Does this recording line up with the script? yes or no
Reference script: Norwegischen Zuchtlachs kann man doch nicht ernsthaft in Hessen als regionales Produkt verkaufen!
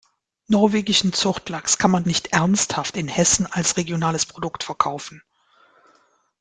no